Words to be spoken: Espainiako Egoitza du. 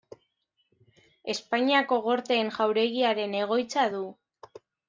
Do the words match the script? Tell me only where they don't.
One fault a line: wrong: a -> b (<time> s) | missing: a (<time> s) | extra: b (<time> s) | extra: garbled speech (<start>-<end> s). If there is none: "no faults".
extra: Gorteen jauregiaren (2.1 s)